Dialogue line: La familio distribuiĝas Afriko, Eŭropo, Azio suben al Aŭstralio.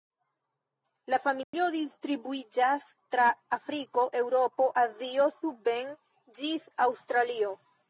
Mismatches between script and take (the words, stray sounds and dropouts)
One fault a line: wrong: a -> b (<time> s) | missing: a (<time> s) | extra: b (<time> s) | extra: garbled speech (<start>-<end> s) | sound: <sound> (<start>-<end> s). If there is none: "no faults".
sound: dropout (1.4-1.5 s)
extra: tra (3.1 s)
wrong: al -> ĝis (6.4 s)